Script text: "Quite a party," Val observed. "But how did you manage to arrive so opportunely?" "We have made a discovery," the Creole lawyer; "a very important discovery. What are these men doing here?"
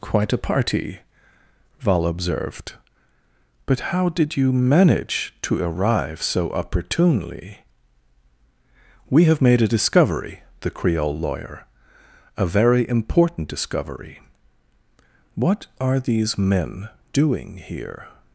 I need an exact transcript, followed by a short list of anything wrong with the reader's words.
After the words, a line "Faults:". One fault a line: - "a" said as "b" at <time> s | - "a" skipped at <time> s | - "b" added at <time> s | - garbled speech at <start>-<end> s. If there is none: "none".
"Quite a party," Val observed. "But how did you manage to arrive so opportunely?" "We have made a discovery," the Creole lawyer; "a very important discovery. What are these men doing here?"
Faults:
none